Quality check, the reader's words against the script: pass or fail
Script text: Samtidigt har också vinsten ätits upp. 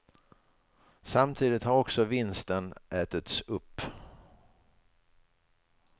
pass